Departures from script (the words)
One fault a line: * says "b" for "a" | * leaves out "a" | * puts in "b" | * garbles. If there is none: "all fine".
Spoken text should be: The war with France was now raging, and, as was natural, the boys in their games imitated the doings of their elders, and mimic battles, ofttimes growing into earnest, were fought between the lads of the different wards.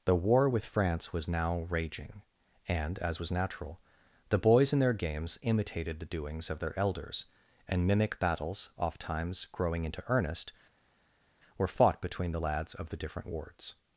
all fine